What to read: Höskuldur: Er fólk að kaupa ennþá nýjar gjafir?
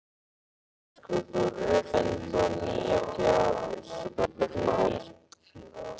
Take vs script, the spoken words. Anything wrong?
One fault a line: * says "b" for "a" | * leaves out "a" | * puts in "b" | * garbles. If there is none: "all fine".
* leaves out "fólk að kaupa"
* garbles